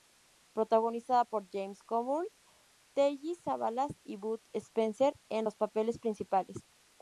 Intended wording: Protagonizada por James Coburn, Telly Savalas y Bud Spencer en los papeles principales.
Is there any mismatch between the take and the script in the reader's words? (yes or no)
no